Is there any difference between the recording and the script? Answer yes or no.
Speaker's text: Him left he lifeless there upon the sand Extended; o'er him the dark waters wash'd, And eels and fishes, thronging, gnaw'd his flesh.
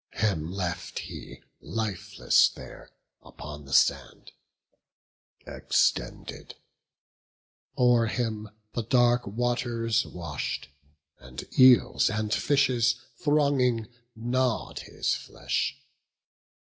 no